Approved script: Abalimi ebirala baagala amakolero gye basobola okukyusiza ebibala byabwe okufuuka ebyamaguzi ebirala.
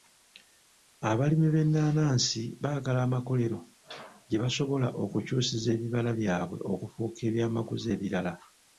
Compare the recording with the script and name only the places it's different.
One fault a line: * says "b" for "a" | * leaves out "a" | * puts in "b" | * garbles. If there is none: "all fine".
* says "b'ennaanansi" for "ebirala"